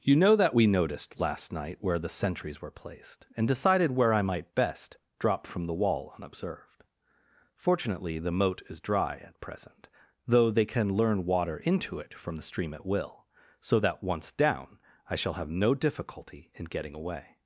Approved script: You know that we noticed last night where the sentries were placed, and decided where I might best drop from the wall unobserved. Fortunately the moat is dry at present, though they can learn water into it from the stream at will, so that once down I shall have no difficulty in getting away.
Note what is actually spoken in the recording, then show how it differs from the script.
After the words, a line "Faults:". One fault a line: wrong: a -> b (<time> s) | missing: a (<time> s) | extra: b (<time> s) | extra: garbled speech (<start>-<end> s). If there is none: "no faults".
You know that we noticed last night where the sentries were placed, and decided where I might best drop from the wall unobserved. Fortunately the moat is dry at present, though they can learn water into it from the stream at will, so that once down I shall have no difficulty in getting away.
Faults:
no faults